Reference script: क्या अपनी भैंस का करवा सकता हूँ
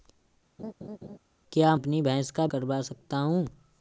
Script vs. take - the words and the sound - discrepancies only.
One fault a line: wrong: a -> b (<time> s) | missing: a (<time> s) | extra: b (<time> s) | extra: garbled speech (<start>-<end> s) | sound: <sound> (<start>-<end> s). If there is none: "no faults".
sound: laugh (0.6-1.2 s)